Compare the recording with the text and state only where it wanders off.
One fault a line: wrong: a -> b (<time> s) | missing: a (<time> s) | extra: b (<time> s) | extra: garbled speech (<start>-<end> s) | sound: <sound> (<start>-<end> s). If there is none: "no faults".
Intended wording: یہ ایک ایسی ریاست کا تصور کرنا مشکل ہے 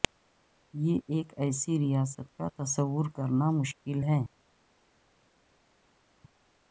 no faults